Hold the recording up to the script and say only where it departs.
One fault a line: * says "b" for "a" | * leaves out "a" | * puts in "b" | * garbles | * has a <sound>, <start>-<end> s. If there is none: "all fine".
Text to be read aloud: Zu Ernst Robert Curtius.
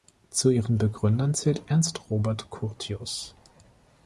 * puts in "ihren Begründern zählt"